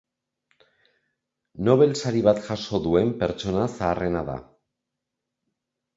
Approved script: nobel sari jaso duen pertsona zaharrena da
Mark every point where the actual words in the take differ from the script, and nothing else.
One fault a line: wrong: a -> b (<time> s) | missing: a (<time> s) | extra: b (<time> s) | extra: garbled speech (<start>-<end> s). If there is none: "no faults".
extra: bat (2.3 s)